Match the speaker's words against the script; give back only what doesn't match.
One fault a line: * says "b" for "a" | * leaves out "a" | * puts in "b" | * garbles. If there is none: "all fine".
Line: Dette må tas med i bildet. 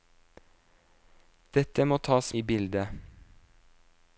* leaves out "med"